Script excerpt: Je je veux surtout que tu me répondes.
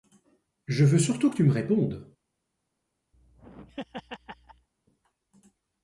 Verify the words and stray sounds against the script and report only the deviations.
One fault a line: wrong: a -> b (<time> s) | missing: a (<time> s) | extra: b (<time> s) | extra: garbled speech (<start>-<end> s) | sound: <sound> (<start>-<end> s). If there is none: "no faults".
missing: je (0.8 s)
sound: laugh (3.1-4.7 s)